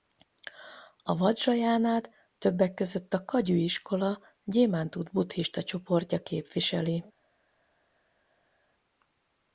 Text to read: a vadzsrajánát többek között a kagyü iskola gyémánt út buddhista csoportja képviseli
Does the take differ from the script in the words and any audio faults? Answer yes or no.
no